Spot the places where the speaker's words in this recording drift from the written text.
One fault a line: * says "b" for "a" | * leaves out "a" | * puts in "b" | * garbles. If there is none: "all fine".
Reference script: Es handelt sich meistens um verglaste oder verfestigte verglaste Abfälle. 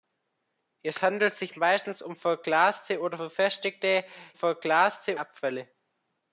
all fine